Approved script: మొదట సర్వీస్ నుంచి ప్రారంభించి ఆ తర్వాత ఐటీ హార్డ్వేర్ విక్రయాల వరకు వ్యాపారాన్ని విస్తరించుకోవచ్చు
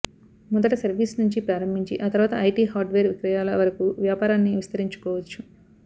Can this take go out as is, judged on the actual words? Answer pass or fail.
pass